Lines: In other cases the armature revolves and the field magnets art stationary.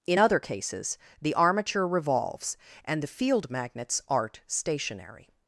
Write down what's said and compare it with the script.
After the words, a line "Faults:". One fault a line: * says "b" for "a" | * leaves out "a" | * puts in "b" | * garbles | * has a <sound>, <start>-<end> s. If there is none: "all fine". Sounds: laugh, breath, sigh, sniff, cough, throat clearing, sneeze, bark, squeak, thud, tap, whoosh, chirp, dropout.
In other cases the armature revolves and the field magnets art stationary.
Faults:
all fine